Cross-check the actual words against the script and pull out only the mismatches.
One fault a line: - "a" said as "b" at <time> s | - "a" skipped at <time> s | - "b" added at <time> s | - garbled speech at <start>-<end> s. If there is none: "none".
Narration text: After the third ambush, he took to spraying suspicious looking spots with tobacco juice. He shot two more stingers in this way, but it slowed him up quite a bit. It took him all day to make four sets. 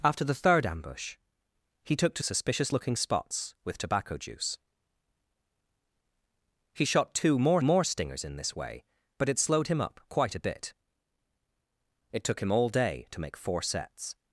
- "spraying" skipped at 2.2 s
- "more" added at 7.6 s